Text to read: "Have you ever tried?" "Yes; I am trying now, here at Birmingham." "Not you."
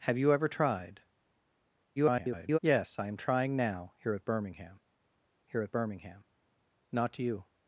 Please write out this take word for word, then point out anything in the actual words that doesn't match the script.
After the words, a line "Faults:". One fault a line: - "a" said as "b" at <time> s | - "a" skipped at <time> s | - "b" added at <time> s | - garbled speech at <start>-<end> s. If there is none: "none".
"Have you ever tried?" [garbled] "Yes; I am trying now, here at Birmingham here at Birmingham." "Not you."
Faults:
- garbled speech at 2.0-2.6 s
- "here at Birmingham" added at 5.5 s